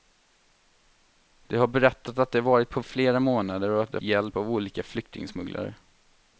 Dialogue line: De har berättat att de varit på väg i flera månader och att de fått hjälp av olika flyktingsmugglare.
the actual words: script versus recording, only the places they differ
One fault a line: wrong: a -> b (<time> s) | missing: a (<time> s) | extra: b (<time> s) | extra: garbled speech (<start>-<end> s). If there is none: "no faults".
missing: väg (2.8 s)
missing: fått (4.0 s)